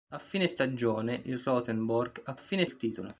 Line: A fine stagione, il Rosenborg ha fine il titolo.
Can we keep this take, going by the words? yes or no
yes